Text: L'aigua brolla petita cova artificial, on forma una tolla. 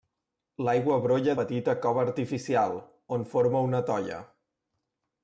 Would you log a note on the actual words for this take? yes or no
no